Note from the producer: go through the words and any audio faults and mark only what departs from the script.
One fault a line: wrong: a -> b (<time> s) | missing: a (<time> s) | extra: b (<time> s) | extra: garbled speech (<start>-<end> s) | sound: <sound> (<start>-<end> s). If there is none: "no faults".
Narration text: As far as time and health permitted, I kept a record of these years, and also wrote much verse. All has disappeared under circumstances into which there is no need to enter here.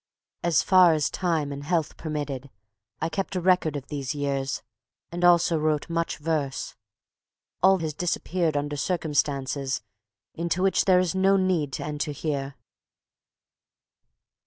no faults